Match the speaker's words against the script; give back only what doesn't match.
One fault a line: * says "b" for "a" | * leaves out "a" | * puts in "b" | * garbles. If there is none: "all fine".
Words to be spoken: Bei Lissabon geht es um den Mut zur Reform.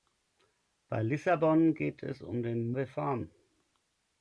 * leaves out "Mut zur"